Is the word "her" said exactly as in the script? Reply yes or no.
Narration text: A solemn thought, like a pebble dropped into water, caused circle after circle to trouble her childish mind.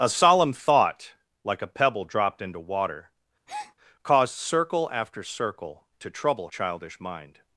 no